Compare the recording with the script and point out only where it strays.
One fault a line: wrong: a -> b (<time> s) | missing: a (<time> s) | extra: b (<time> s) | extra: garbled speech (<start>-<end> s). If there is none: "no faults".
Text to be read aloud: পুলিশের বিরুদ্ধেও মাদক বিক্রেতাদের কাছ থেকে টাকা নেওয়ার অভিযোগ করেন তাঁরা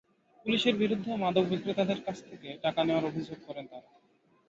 no faults